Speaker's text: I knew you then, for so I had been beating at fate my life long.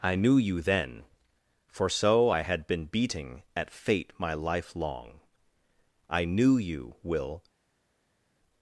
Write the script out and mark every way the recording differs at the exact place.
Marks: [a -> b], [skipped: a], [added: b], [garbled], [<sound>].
I knew you then, for so I had been beating at fate my life long. [added: I knew you Will]